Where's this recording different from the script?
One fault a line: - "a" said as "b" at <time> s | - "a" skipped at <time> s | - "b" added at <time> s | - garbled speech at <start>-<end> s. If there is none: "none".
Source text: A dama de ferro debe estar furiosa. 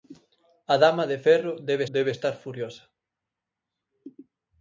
- "debe" added at 1.9 s